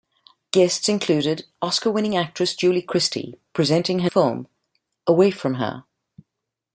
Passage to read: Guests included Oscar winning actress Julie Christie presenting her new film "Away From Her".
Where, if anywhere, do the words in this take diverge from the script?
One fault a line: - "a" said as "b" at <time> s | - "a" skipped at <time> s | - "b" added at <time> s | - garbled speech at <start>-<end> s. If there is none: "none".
- "new" skipped at 4.1 s